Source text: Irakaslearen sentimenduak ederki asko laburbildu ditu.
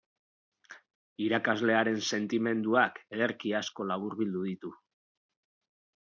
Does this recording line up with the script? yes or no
yes